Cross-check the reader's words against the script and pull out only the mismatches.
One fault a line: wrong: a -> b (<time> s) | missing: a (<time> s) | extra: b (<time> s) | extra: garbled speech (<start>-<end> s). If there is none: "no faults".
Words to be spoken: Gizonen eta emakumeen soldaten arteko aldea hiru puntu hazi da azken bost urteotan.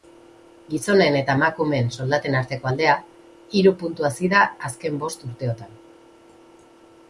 no faults